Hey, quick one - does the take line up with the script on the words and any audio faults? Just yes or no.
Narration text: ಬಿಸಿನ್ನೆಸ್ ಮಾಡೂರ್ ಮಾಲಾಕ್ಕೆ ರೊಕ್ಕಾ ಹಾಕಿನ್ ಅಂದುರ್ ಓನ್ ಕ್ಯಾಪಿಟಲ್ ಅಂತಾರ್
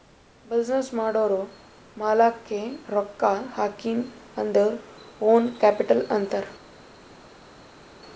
yes